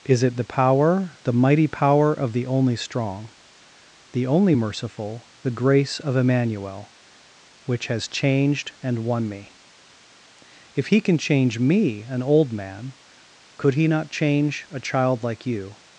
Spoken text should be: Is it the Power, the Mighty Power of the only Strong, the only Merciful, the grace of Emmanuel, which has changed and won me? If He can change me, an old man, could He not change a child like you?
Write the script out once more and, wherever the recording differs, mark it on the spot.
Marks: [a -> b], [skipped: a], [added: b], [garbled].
Is it the Power, the Mighty Power of the only Strong, the only Merciful, the grace of Emmanuel, which has changed and won me? If He can change me, an old man, could He not change a child like you?